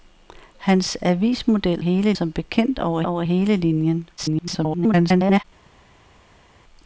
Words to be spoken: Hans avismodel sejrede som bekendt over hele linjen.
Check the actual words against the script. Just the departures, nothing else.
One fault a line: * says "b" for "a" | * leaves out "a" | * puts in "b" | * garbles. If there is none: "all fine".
* says "hele" for "sejrede"
* puts in "over"
* garbles